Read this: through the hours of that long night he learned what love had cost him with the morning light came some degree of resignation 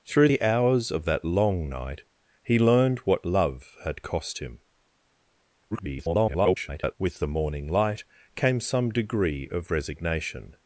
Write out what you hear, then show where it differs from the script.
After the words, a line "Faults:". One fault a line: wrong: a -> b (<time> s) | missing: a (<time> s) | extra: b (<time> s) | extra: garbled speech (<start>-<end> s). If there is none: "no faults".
through the hours of that long night he learned what love had cost him [garbled] with the morning light came some degree of resignation
Faults:
extra: garbled speech (5.7-7.0 s)